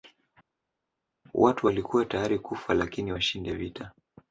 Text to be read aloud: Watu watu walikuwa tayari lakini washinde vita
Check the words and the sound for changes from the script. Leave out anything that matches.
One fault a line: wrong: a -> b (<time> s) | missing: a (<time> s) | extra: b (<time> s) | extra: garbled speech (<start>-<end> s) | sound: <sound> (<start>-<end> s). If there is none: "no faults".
missing: watu (1.7 s)
extra: kufa (2.4 s)